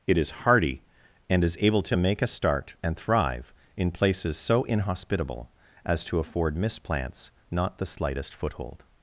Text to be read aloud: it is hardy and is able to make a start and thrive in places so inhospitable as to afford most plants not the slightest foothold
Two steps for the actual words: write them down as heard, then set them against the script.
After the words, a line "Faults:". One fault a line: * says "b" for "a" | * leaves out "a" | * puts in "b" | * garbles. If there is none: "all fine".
it is hardy and is able to make a start and thrive in places so inhospitable as to afford mist plants not the slightest foothold
Faults:
* says "mist" for "most"